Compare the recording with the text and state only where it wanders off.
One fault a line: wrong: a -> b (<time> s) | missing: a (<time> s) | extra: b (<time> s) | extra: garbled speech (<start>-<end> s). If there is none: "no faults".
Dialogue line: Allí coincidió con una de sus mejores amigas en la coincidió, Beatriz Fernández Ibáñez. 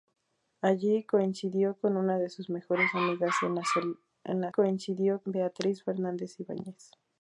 no faults